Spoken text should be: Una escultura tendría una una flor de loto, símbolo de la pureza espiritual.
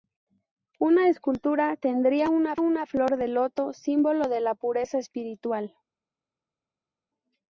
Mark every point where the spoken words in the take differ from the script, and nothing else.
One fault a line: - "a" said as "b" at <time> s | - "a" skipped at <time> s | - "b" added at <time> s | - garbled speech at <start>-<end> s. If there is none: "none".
none